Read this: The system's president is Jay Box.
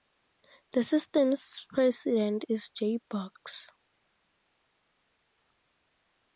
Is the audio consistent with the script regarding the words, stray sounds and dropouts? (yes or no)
yes